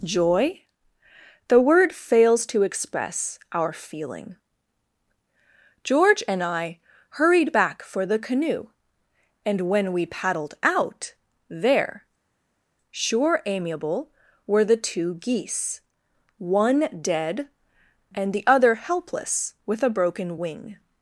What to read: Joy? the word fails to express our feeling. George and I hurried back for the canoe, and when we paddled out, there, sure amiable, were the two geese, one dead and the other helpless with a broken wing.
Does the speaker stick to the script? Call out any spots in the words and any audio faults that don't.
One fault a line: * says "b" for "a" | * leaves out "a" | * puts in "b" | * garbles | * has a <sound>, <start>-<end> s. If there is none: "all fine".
all fine